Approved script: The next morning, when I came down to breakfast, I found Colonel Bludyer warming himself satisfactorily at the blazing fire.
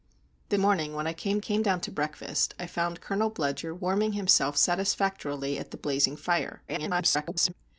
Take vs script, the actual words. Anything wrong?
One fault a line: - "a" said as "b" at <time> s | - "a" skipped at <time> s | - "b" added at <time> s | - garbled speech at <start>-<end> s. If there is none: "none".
- "next" skipped at 0.6 s
- "came" added at 1.4 s
- garbled speech at 6.7-7.5 s